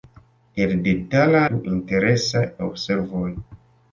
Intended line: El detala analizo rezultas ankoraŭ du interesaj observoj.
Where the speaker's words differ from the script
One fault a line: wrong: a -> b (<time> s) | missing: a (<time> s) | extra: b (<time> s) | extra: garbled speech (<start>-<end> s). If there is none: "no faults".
missing: analizo rezultas ankoraŭ (1.4 s)